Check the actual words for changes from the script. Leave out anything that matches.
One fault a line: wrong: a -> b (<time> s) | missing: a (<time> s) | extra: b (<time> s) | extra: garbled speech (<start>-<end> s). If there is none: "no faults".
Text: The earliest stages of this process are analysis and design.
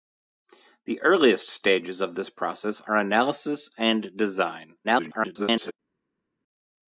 extra: garbled speech (4.8-5.7 s)